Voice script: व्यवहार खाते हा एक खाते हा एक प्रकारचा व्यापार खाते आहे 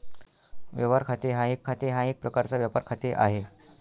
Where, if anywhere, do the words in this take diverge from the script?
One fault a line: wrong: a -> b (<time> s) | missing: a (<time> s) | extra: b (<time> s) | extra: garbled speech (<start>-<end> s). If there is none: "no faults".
no faults